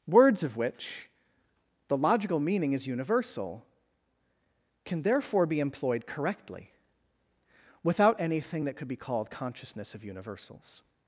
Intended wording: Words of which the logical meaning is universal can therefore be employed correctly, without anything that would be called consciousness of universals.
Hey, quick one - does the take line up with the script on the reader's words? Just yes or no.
no